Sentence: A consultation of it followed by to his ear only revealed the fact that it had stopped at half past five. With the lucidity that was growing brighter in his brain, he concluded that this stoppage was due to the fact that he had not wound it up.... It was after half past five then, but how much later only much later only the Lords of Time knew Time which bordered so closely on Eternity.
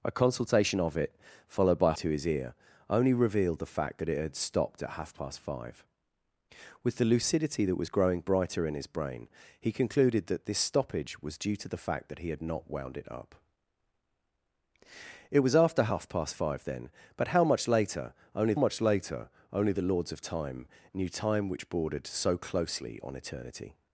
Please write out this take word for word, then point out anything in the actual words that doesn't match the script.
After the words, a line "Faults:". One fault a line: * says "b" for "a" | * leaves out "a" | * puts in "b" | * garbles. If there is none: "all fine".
A consultation of it followed by to his ear only revealed the fact that it had stopped at half past five. With the lucidity that was growing brighter in his brain, he concluded that this stoppage was due to the fact that he had not wound it up.... It was after half past five then, but how much later only much later only the Lords of Time knew Time which bordered so closely on Eternity.
Faults:
all fine